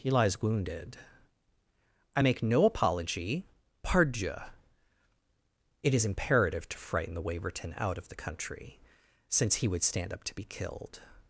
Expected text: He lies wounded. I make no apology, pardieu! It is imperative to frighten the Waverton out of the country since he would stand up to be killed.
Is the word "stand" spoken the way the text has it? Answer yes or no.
yes